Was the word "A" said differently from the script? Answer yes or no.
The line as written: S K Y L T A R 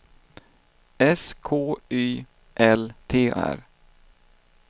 yes